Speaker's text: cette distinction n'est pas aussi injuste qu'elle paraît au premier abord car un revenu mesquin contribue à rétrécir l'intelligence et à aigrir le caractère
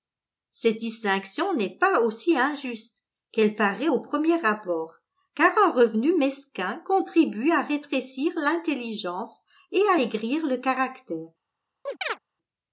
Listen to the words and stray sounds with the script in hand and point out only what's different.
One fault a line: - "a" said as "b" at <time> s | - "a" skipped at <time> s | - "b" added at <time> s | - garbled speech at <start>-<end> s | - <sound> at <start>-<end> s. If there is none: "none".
- chirp at 11.9-12.2 s